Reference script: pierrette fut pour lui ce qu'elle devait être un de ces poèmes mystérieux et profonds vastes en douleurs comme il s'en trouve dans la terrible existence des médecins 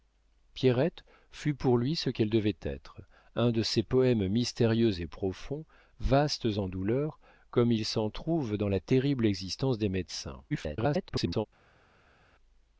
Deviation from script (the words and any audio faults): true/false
true